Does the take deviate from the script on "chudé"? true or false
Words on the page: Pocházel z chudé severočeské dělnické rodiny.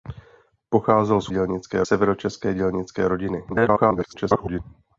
true